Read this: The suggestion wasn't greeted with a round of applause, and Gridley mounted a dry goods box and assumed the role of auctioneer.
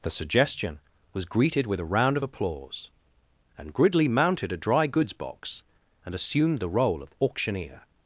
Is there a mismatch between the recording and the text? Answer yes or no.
yes